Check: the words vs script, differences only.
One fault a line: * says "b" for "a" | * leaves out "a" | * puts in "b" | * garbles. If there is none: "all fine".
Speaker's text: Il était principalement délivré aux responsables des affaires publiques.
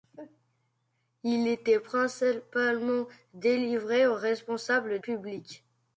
* leaves out "des affaires"